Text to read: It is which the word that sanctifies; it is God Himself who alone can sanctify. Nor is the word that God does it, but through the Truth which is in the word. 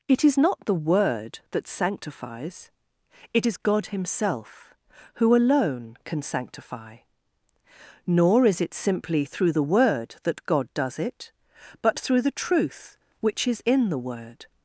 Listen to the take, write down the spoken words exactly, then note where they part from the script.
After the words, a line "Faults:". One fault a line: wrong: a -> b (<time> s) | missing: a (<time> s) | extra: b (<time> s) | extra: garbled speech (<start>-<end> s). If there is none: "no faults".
It is not the word that sanctifies; it is God Himself who alone can sanctify. Nor is it simply through the word that God does it, but through the Truth which is in the word.
Faults:
wrong: which -> not (0.4 s)
extra: it simply through (8.6 s)